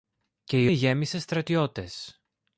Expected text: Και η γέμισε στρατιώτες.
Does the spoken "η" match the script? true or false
true